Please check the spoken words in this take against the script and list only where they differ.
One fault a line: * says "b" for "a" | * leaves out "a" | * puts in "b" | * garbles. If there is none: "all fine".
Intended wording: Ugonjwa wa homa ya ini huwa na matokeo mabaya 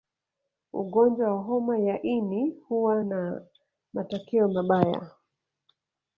all fine